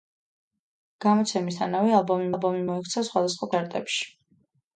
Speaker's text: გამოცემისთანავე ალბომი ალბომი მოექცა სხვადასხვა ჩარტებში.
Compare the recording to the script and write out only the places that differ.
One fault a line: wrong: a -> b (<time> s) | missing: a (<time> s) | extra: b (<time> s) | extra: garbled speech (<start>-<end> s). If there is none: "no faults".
no faults